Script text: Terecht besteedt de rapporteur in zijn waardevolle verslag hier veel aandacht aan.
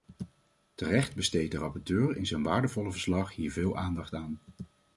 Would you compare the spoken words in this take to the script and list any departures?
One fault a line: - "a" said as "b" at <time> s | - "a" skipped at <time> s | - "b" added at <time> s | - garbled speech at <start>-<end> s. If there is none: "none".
none